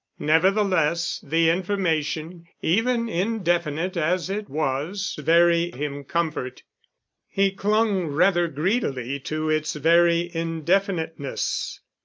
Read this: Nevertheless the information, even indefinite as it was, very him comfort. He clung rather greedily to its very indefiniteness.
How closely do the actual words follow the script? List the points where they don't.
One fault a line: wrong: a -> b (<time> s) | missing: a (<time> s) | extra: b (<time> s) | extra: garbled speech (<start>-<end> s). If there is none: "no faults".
no faults